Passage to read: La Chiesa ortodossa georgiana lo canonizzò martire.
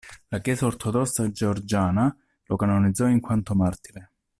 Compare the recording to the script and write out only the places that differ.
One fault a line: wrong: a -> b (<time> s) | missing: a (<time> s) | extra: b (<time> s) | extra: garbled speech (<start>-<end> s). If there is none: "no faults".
extra: in quanto (3.1 s)